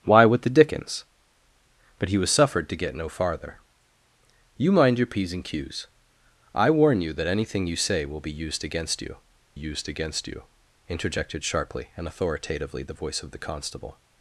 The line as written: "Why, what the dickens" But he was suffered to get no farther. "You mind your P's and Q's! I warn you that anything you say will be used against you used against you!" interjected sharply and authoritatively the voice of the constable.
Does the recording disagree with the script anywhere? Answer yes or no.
no